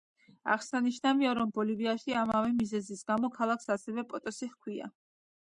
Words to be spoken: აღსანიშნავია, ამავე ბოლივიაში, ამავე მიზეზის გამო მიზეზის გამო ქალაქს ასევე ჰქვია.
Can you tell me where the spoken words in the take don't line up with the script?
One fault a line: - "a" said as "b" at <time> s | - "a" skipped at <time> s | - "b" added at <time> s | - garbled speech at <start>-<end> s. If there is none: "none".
- "ამავე" said as "რომ" at 1.4 s
- "მიზეზის გამო" skipped at 3.3 s
- "პოტოსი" added at 4.1 s